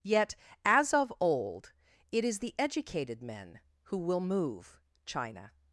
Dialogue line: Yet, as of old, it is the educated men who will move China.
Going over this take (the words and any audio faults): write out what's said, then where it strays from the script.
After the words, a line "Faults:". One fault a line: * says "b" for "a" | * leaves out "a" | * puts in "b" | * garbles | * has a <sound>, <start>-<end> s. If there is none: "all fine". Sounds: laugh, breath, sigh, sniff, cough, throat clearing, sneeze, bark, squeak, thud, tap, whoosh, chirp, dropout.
Yet, as of old, it is the educated men who will move China.
Faults:
all fine